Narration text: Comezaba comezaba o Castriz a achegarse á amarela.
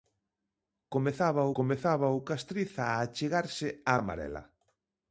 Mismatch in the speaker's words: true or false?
false